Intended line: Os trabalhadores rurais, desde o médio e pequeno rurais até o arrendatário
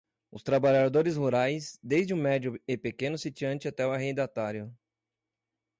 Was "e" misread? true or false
false